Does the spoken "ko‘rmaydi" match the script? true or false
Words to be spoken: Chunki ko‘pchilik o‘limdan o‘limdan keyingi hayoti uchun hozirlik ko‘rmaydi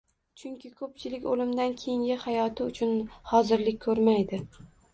true